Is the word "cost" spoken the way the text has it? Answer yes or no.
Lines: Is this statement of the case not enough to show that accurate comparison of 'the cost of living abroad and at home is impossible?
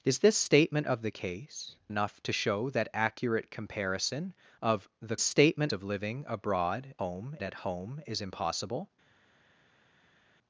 no